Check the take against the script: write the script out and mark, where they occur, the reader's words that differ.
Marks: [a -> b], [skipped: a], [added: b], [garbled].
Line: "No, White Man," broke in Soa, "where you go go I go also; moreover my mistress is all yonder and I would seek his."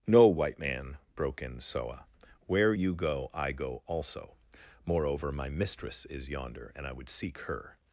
"No, White Man," broke in Soa, "where you go [skipped: go] I go also; moreover my mistress is [skipped: all] yonder and I would seek [his." -> her]